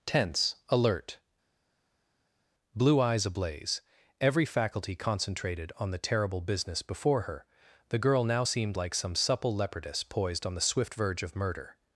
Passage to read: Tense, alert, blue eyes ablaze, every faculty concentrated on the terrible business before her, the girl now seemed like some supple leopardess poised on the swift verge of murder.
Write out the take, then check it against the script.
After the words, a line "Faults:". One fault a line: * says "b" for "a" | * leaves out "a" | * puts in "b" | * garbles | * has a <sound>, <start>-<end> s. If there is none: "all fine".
Tense, alert, blue eyes ablaze, every faculty concentrated on the terrible business before her, the girl now seemed like some supple leopardess poised on the swift verge of murder.
Faults:
all fine